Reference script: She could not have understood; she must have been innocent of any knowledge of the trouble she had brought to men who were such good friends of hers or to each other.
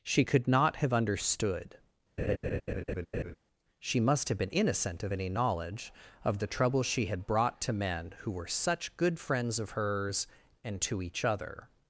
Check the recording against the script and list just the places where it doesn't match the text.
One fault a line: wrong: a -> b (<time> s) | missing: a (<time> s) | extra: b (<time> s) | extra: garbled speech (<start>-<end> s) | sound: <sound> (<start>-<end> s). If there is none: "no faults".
sound: laugh (2.2-3.4 s)
wrong: or -> and (10.6 s)